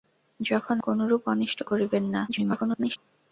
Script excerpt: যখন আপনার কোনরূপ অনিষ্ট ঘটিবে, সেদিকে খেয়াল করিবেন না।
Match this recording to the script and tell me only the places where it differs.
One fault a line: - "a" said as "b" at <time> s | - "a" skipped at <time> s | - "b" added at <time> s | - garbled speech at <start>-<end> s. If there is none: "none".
- "আপনার" skipped at 0.8 s
- "ঘটিবে সেদিকে খেয়াল" skipped at 1.6 s
- garbled speech at 2.3-3.0 s